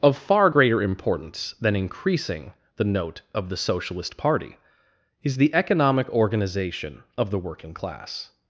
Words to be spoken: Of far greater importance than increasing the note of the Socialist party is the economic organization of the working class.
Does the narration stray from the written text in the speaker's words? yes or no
no